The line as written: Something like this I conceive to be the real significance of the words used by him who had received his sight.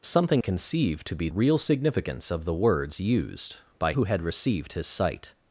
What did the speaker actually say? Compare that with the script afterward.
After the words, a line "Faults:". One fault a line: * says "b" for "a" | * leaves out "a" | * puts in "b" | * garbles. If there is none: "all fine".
Something conceive to be real significance of the words used by who had received his sight.
Faults:
* leaves out "like this I"
* leaves out "the"
* leaves out "him"